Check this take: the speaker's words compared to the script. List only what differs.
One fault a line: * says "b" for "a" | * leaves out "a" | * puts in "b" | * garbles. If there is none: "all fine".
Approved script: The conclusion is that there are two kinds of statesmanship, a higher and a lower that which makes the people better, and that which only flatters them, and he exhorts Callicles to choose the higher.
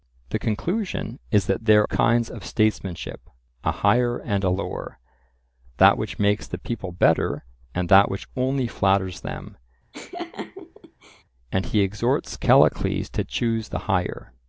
* leaves out "are two"